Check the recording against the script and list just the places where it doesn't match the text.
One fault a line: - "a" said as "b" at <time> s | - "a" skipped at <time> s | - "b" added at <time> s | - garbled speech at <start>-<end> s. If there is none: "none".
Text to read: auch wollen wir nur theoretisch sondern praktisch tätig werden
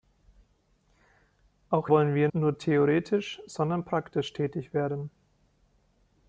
none